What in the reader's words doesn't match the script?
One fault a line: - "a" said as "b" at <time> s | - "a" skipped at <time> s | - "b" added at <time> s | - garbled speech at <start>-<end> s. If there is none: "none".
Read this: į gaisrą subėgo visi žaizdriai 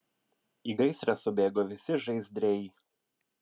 none